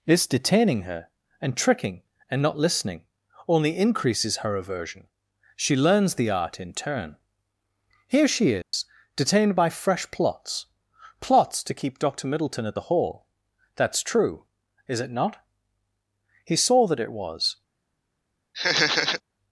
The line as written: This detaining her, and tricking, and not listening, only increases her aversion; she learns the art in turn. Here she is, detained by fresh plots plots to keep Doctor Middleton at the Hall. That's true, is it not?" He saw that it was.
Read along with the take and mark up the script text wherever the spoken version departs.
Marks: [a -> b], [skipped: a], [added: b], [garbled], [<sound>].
This detaining her, and tricking, and not listening, only increases her aversion; she learns the art in turn. Here she is, [dropout] detained by fresh plots plots to keep Doctor Middleton at the Hall. That's true, is it not?" He saw that it was. [laugh]